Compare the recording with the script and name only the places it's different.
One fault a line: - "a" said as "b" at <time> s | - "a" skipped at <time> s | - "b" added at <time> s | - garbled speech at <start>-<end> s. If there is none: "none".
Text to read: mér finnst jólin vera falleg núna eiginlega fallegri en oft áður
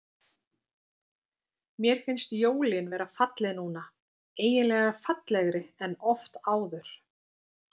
none